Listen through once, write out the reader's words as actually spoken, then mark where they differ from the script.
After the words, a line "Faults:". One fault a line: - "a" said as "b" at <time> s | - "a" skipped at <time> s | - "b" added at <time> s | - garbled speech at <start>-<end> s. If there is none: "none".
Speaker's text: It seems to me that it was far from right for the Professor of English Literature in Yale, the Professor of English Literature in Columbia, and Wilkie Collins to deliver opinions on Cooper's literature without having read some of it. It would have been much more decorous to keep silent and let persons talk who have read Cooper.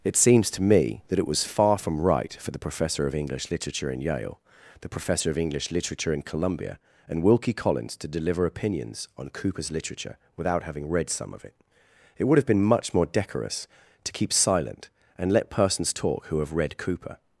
It seems to me that it was far from right for the Professor of English Literature in Yale, the Professor of English Literature in Columbia, and Wilkie Collins to deliver opinions on Cooper's literature without having read some of it. It would have been much more decorous to keep silent and let persons talk who have read Cooper.
Faults:
none